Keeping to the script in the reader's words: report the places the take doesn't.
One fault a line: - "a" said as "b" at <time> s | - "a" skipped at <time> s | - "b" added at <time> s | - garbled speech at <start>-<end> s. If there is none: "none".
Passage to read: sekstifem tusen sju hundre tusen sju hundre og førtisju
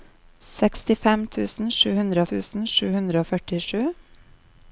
none